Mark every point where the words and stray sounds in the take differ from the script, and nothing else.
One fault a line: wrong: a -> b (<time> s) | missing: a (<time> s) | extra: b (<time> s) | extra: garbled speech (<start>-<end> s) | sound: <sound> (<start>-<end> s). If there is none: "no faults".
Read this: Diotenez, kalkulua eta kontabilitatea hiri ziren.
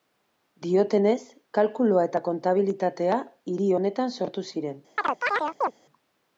extra: honetan sortu (3.8 s)
sound: chirp (5.0-5.7 s)